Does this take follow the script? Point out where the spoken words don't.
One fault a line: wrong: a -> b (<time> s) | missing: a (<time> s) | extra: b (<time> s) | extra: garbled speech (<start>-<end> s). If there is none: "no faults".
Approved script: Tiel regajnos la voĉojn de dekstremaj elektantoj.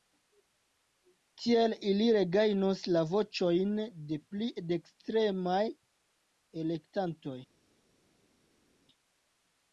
extra: ili (1.9 s)
extra: pli (4.3 s)